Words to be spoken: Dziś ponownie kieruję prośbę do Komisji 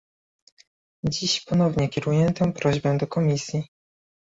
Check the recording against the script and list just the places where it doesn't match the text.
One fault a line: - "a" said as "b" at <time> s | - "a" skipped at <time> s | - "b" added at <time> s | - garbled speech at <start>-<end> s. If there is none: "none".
- "tę" added at 2.3 s